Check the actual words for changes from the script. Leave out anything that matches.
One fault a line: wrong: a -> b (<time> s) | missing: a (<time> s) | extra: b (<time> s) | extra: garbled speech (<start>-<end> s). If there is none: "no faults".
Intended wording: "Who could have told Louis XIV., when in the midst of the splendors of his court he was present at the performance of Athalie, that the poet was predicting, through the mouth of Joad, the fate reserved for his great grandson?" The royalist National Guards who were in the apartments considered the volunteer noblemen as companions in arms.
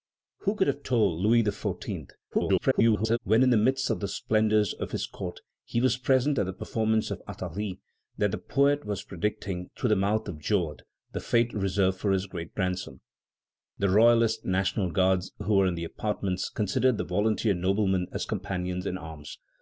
extra: garbled speech (2.3-3.2 s)